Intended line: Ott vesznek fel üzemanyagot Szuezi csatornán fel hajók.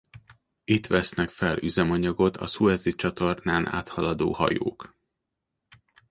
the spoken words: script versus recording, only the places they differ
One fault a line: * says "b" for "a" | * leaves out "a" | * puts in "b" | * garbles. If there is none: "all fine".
* says "Itt" for "Ott"
* puts in "a"
* says "áthaladó" for "fel"